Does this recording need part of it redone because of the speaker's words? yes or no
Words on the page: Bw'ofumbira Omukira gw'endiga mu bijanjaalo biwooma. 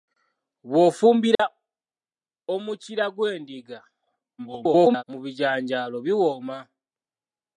yes